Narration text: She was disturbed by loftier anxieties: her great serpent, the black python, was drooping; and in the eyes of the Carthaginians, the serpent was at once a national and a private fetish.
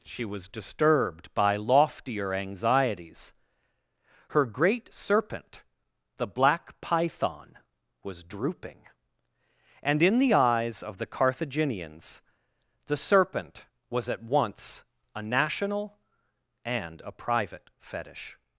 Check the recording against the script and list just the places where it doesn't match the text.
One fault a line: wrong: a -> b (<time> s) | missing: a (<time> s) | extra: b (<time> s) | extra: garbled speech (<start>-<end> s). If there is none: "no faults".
no faults